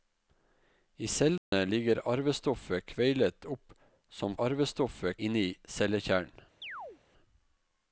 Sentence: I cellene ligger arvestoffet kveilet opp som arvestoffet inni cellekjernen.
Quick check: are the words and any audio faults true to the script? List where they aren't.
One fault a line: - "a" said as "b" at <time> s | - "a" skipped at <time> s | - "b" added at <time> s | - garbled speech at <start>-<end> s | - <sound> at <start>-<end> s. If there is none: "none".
- dropout at 1.4-1.5 s
- chirp at 6.6-7.0 s